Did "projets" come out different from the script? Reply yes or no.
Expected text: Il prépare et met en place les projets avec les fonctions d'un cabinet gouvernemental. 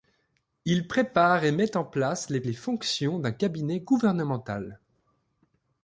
yes